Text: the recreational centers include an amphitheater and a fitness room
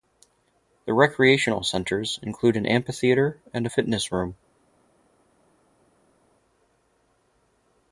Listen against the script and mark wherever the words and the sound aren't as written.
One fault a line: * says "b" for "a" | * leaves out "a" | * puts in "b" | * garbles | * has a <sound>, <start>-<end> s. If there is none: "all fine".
all fine